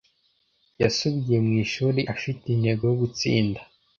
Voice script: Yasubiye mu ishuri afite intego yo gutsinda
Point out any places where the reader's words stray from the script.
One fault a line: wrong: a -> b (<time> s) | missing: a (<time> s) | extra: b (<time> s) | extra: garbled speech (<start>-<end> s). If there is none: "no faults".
no faults